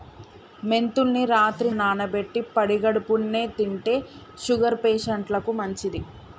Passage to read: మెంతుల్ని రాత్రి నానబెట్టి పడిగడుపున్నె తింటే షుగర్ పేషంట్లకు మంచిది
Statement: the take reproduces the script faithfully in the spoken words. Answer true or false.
true